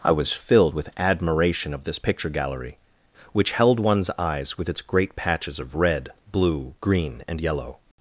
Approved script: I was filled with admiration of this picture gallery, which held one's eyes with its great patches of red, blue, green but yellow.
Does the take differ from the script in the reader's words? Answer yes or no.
yes